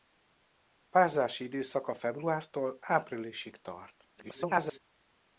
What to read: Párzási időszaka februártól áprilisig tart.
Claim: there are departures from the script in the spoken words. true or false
true